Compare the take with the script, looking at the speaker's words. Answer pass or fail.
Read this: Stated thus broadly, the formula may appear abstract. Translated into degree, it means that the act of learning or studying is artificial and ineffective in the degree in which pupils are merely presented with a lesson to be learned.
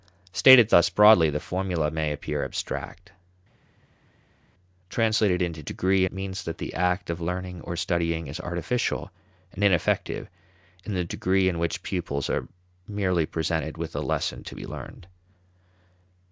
pass